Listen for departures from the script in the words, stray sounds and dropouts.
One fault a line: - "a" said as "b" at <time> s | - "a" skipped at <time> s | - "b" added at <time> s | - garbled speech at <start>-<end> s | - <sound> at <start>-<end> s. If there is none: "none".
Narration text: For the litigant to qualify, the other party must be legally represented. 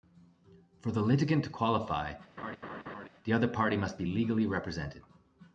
- laugh at 2.4-3.1 s